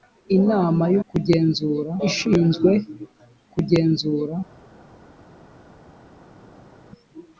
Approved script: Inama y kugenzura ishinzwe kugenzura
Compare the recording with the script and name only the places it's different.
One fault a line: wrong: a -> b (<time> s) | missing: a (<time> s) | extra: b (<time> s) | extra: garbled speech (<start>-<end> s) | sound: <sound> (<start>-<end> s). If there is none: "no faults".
no faults